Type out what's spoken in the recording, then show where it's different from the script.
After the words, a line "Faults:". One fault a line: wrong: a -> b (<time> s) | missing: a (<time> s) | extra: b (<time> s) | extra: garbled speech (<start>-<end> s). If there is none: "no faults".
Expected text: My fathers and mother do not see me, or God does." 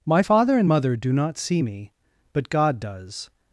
My father and mother do not see me, but God does."
Faults:
wrong: fathers -> father (0.2 s)
wrong: or -> but (2.3 s)